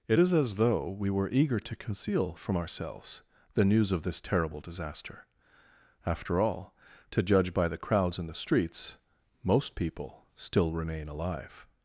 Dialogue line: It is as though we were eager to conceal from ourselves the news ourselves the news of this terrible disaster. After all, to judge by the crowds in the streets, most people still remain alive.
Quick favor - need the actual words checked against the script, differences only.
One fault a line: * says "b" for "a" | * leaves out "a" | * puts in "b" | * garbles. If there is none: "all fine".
* leaves out "ourselves the news"